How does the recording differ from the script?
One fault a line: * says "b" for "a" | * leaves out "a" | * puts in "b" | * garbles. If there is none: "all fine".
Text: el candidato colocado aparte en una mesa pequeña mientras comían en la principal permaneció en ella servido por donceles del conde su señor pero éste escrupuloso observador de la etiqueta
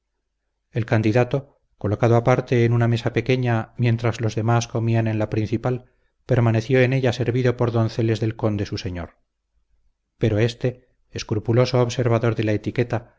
* puts in "los demás"